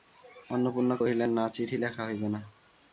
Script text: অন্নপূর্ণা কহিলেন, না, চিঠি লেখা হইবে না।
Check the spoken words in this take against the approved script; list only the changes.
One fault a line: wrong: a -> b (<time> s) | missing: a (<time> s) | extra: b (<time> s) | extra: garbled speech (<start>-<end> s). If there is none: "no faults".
no faults